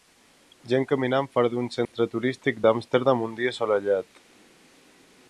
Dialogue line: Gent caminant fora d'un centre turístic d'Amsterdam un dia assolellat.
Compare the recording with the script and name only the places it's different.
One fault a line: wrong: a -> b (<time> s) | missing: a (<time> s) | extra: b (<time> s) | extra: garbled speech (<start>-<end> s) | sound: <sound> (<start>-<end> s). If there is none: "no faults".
sound: dropout (1.8-1.9 s)